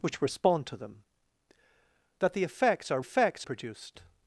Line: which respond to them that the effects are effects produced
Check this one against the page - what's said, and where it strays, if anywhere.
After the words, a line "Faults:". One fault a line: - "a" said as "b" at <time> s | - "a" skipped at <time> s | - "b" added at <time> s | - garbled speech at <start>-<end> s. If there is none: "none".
which respond to them that the effects are effects produced
Faults:
none